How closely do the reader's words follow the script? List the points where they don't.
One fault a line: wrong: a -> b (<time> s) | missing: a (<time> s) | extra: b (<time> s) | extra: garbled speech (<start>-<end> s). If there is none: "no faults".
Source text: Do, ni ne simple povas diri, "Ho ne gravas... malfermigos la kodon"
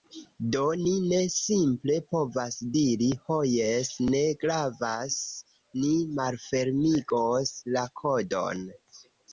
extra: jes (3.6 s)
extra: ni (5.8 s)